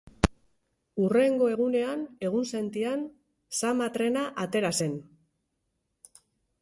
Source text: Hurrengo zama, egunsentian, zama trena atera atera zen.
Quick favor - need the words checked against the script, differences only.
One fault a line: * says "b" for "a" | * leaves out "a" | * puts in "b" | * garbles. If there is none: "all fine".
* says "egunean" for "zama"
* leaves out "atera"